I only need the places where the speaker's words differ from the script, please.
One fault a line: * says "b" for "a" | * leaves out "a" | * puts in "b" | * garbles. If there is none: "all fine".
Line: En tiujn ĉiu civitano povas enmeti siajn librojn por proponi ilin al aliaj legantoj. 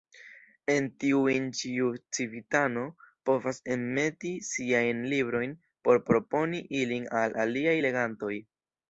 all fine